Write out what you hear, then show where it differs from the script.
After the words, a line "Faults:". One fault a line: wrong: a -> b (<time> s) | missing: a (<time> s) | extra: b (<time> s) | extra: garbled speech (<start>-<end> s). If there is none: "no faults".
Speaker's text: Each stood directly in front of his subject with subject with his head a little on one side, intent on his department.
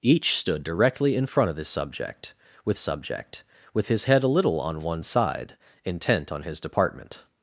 Each stood directly in front of his subject with subject with his head a little on one side, intent on his department.
Faults:
no faults